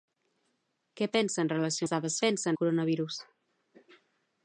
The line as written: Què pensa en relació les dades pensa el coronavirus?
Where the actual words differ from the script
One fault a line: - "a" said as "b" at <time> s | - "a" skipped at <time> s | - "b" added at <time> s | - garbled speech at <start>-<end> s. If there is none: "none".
none